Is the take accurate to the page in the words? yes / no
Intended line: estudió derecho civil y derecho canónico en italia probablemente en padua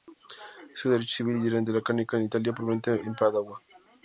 yes